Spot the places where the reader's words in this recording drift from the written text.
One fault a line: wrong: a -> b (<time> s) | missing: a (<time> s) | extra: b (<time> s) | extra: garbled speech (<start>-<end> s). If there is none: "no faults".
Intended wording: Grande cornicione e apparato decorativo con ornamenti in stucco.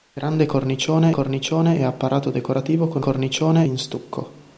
extra: cornicione (1.1 s)
wrong: ornamenti -> cornicione (3.0 s)